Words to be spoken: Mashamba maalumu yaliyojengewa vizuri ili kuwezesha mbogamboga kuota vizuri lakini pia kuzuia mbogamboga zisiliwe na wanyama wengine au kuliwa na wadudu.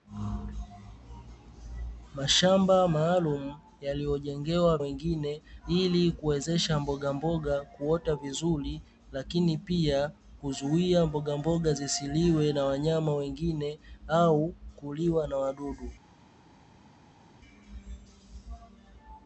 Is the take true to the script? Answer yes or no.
no